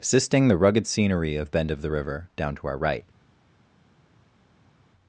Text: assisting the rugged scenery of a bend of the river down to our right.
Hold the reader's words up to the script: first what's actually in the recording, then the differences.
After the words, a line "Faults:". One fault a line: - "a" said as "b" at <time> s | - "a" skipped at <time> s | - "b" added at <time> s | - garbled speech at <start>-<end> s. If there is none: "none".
assisting the rugged scenery of bend of the river down to our right.
Faults:
- "a" skipped at 1.5 s